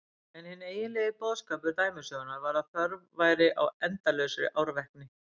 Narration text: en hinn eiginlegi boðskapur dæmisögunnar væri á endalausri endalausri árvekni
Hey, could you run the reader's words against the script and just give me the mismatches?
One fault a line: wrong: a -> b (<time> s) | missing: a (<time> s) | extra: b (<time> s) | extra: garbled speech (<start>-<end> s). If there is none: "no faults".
extra: var að þörf (2.5 s)
missing: endalausri (4.5 s)